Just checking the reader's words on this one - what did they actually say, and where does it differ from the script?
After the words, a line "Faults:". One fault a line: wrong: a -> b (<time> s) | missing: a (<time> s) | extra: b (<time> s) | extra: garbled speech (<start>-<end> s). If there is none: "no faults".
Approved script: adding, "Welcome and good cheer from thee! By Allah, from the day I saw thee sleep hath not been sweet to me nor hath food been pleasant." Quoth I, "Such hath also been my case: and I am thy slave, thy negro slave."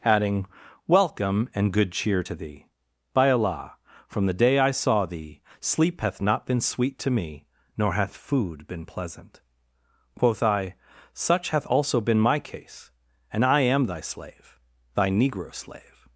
adding, "Welcome and good cheer to thee! By Allah, from the day I saw thee sleep hath not been sweet to me nor hath food been pleasant." Quoth I, "Such hath also been my case: and I am thy slave, thy negro slave."
Faults:
wrong: from -> to (2.2 s)